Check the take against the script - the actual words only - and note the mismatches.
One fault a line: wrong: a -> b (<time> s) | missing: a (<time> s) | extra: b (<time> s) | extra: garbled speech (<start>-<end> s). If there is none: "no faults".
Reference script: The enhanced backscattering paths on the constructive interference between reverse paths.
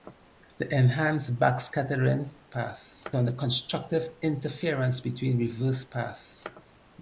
no faults